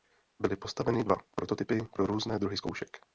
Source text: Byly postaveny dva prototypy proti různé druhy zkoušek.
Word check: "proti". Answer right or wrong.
wrong